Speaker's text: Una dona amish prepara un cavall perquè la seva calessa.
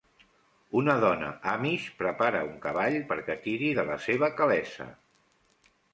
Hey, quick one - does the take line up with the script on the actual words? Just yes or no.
no